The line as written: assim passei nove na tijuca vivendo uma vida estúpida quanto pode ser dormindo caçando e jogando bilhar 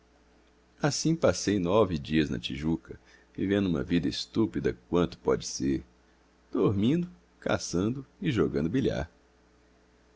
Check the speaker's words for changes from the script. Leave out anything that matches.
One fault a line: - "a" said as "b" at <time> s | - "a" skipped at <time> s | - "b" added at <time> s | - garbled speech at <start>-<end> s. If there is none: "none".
- "dias" added at 2.0 s